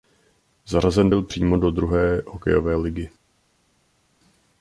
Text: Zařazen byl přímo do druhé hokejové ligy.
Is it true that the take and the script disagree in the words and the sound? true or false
false